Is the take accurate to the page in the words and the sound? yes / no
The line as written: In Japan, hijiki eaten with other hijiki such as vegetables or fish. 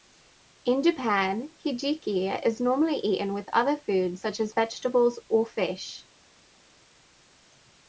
no